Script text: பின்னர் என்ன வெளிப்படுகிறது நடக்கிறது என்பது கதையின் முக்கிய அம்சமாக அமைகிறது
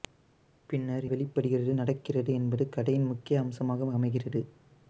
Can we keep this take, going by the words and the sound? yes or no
no